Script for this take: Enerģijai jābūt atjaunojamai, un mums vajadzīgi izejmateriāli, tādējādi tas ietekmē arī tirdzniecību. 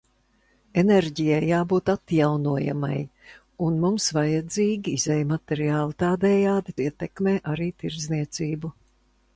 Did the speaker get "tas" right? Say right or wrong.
wrong